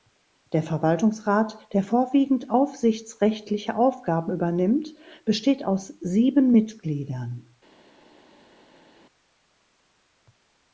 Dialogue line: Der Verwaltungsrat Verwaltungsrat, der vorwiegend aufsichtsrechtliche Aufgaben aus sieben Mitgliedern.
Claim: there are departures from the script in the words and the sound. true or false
true